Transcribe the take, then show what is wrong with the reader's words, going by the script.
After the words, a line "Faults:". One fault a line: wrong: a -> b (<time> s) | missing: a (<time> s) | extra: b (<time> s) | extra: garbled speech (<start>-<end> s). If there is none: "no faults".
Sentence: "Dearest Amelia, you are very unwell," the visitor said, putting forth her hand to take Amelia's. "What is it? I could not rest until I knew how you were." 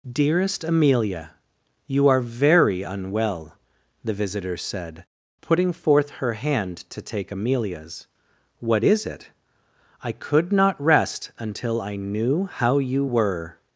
"Dearest Amelia, you are very unwell," the visitor said, putting forth her hand to take Amelia's. "What is it? I could not rest until I knew how you were."
Faults:
no faults